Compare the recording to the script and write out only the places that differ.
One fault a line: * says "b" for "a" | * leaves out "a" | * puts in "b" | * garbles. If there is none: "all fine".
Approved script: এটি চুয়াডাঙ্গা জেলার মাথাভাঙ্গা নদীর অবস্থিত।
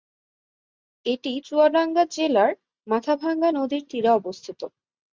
* puts in "তীরে"